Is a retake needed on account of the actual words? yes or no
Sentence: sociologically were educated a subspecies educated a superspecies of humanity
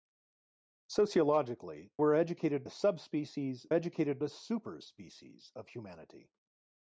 no